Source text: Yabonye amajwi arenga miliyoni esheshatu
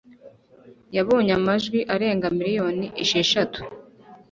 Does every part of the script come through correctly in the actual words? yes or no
yes